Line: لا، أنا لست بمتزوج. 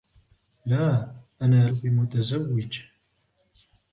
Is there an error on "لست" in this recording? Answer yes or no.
yes